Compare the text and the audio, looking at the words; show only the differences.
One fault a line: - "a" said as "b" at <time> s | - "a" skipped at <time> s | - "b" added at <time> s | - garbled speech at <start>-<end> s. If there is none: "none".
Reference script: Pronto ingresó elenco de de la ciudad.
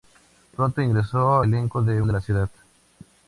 none